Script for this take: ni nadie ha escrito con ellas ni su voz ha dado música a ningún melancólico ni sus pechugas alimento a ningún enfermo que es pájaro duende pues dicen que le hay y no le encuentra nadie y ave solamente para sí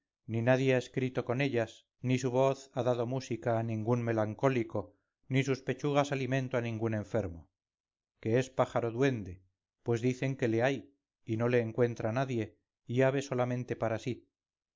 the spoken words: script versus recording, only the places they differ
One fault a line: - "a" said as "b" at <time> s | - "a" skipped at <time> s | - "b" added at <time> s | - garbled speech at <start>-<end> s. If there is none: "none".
none